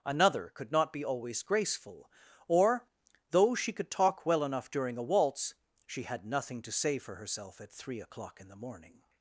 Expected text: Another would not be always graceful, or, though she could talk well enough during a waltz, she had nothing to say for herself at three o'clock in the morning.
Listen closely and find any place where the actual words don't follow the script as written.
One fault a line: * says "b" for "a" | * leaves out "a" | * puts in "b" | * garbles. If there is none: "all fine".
* says "could" for "would"